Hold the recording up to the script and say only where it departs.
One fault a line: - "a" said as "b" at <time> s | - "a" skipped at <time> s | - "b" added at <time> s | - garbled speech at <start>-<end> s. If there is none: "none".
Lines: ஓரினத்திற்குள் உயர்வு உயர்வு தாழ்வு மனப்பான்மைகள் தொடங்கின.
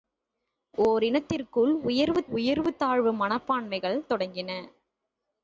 none